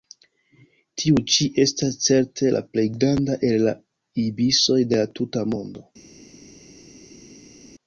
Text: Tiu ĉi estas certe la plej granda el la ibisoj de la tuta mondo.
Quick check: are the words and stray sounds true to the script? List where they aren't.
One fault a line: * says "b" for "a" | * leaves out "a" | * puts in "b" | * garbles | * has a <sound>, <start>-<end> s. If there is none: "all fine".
all fine